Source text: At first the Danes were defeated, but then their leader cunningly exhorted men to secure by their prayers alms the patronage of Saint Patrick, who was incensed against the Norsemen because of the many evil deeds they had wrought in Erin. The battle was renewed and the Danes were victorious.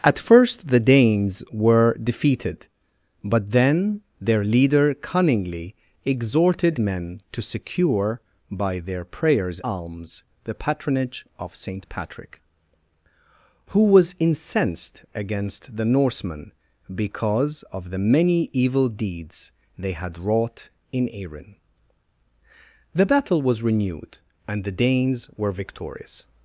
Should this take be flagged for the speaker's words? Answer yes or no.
no